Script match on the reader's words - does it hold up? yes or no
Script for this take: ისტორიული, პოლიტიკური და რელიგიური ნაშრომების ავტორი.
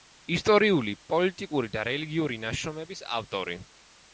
yes